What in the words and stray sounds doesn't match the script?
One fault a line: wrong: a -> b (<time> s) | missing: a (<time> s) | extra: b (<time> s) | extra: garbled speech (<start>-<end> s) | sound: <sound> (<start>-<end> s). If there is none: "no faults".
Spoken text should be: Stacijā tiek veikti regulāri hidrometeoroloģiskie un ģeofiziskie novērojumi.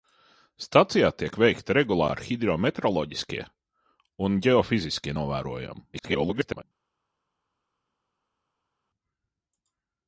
extra: garbled speech (5.9-6.6 s)